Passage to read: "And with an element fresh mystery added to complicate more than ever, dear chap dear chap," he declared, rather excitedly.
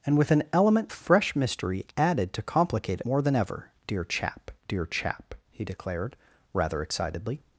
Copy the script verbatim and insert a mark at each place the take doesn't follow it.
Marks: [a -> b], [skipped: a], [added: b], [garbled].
"And with an element fresh mystery added to complicate more than ever, dear chap dear chap," he declared, rather excitedly.